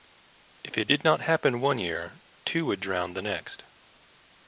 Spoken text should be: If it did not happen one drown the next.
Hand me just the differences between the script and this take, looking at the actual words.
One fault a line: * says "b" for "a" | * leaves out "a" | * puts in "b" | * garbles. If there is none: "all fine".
* puts in "year two would"